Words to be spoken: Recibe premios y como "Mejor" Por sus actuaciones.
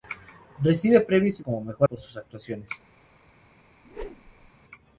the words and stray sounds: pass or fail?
fail